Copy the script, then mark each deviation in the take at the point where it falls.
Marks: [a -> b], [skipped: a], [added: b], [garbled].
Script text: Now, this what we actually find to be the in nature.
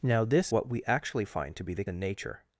Now, this what we actually find to be the in nature.